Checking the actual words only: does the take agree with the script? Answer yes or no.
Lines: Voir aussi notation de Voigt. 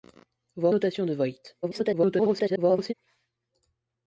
no